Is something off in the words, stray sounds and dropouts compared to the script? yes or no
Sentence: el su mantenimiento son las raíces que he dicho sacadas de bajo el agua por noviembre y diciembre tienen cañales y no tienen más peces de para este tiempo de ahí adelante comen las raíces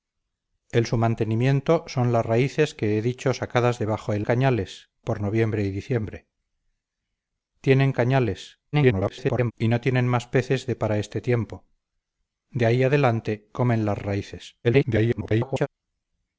yes